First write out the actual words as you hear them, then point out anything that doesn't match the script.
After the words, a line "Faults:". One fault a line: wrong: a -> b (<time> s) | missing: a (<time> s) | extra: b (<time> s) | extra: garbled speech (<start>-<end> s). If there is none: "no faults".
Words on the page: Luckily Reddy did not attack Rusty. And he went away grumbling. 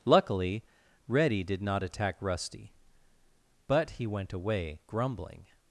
Luckily Reddy did not attack Rusty. But he went away grumbling.
Faults:
wrong: And -> But (3.7 s)